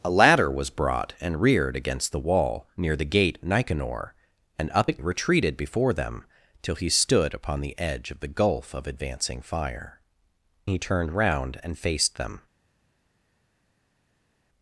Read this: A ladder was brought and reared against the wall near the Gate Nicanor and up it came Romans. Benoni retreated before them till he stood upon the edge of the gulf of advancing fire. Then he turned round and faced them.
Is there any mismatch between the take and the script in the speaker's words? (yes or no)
yes